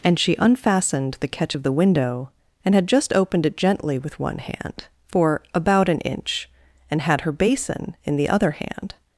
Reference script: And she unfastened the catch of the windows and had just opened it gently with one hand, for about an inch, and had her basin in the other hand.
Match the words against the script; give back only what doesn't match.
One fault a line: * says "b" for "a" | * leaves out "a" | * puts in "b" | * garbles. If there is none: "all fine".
* says "window" for "windows"